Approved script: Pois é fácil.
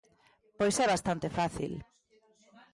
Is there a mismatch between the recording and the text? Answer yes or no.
yes